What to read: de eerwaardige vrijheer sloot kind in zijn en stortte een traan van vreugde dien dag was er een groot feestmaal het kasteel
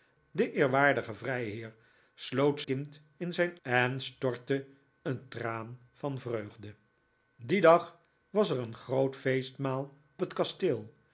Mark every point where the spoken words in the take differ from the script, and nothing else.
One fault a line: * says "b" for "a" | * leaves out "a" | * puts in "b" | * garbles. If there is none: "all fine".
all fine